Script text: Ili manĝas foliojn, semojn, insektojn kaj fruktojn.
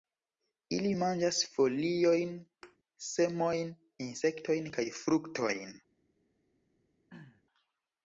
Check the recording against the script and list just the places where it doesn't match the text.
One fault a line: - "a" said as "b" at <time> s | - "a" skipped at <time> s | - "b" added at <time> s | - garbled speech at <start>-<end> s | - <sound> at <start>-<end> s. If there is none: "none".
- thud at 2.6-2.8 s
- throat clearing at 7.1-7.4 s